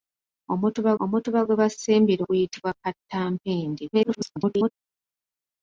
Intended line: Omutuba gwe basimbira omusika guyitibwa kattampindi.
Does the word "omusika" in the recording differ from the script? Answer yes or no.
yes